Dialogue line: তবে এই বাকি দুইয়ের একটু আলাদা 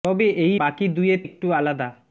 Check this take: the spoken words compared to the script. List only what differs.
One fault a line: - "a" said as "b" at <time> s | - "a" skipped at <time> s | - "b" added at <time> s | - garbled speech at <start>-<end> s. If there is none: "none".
none